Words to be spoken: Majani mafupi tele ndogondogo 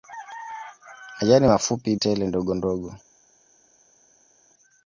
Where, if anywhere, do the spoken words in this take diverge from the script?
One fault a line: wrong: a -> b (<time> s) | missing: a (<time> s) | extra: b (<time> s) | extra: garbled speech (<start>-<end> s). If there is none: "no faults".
no faults